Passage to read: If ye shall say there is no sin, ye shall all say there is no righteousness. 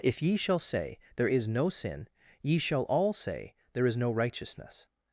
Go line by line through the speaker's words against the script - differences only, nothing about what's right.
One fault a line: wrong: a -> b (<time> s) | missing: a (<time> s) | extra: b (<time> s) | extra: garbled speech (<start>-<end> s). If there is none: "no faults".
no faults